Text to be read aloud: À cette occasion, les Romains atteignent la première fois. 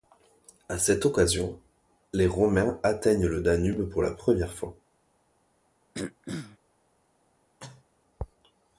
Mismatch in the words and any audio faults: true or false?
true